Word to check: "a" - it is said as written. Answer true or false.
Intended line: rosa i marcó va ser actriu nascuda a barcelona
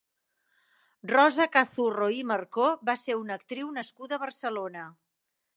true